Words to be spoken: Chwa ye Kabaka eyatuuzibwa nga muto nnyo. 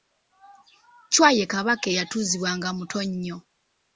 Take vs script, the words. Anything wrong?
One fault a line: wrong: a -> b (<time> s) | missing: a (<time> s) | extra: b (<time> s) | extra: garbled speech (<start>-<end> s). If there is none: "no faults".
no faults